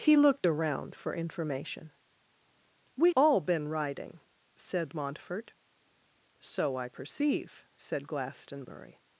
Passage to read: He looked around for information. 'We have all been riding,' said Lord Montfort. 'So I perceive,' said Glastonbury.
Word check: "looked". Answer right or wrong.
right